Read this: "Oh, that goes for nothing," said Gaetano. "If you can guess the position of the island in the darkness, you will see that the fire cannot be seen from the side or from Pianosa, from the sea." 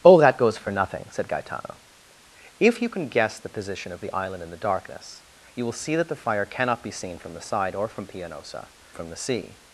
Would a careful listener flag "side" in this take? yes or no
no